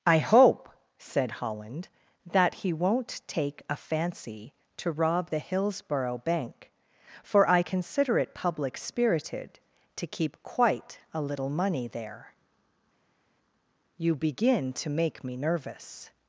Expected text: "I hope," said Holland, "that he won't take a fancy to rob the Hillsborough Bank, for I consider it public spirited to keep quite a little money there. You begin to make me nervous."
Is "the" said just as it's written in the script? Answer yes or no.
yes